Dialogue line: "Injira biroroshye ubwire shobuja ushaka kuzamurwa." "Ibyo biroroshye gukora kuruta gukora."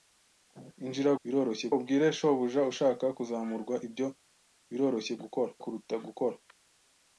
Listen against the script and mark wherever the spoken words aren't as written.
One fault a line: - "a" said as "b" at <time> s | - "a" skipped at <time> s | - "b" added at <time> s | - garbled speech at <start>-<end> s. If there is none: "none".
none